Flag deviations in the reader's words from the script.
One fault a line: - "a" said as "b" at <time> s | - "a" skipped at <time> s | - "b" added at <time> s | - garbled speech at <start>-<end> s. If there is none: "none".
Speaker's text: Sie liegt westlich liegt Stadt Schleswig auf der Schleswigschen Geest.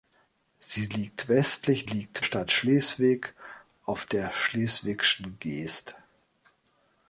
none